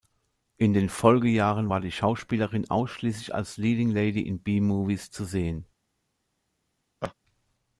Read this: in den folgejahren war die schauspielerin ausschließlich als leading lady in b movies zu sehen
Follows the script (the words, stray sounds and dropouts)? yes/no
no